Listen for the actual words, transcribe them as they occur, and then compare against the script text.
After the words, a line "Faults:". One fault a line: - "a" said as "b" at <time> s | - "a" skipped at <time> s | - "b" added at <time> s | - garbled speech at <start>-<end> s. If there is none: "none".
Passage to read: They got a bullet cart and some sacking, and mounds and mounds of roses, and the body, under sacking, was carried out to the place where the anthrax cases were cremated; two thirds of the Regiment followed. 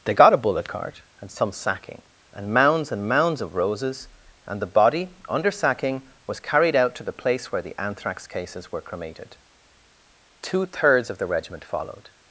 They got a bullet cart and some sacking, and mounds and mounds of roses, and the body, under sacking, was carried out to the place where the anthrax cases were cremated; two thirds of the Regiment followed.
Faults:
none